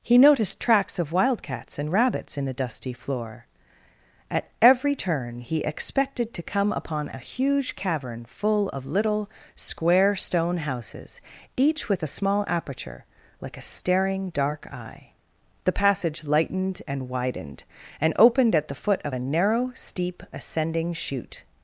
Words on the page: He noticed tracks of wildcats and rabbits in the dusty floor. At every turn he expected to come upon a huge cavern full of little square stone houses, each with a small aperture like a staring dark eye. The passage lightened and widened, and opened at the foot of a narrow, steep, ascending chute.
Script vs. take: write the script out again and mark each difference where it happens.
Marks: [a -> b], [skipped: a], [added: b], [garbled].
He noticed tracks of wildcats and rabbits in the dusty floor. At every turn he expected to come upon a huge cavern full of little square stone houses, each with a small aperture like a staring dark eye. The passage lightened and widened, and opened at the foot of a narrow, steep, ascending chute.